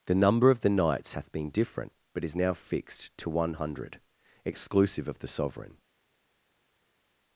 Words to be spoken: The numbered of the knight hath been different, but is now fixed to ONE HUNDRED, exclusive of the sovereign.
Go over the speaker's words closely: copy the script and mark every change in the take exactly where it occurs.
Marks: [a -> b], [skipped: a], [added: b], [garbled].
The [numbered -> number] of the [knight -> knights] hath been different, but is now fixed to ONE HUNDRED, exclusive of the sovereign.